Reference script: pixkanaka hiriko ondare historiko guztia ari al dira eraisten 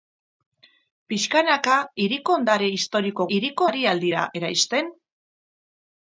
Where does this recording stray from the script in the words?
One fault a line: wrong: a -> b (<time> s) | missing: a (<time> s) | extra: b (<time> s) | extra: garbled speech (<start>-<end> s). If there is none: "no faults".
wrong: guztia -> hiriko (3.4 s)